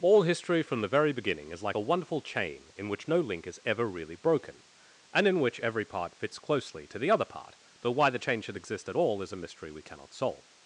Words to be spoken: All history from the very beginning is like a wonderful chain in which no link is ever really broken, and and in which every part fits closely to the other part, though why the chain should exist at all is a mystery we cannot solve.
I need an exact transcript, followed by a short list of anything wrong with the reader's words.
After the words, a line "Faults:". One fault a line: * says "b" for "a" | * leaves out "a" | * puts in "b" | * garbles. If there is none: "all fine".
All history from the very beginning is like a wonderful chain in which no link is ever really broken, and in which every part fits closely to the other part, though why the chain should exist at all is a mystery we cannot solve.
Faults:
* leaves out "and"